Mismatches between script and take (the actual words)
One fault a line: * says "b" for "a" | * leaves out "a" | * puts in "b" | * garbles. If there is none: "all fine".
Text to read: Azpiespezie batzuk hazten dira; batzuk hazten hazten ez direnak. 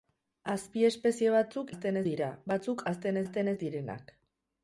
all fine